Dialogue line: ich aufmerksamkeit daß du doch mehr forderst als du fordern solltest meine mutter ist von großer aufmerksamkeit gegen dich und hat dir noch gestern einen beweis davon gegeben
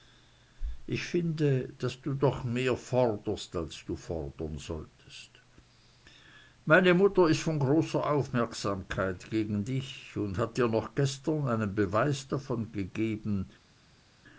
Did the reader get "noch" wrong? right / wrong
right